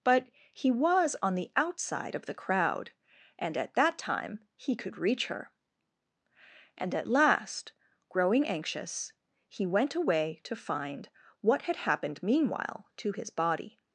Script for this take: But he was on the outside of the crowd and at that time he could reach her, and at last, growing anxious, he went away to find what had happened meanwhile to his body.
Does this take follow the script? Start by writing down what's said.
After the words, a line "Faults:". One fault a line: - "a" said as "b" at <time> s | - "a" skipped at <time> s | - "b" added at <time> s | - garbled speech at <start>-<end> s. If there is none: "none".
But he was on the outside of the crowd and at that time he could reach her, and at last, growing anxious, he went away to find what had happened meanwhile to his body.
Faults:
none